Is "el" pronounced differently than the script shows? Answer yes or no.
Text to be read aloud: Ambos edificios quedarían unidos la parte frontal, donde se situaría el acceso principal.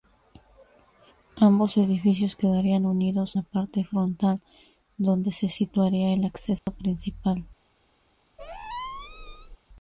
no